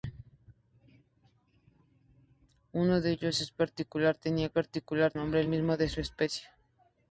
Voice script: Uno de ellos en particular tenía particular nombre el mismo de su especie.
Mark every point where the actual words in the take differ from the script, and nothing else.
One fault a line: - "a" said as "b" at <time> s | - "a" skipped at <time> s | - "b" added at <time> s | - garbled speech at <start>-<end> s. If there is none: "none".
none